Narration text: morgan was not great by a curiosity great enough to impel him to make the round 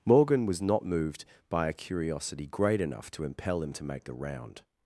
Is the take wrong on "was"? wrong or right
right